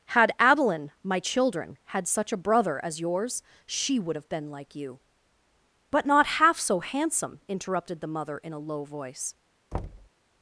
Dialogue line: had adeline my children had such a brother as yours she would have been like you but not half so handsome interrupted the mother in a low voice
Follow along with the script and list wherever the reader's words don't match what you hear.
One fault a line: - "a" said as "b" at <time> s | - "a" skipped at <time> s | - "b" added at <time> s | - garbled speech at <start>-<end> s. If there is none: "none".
none